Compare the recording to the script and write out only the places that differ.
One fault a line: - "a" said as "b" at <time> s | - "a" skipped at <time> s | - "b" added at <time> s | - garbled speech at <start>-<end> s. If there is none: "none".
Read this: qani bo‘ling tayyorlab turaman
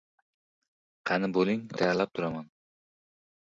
none